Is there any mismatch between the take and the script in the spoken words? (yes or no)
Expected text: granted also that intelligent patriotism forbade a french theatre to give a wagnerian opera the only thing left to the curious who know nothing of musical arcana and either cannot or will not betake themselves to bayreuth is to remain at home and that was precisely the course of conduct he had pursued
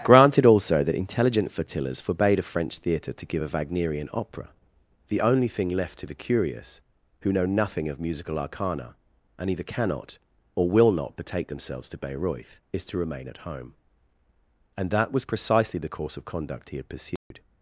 yes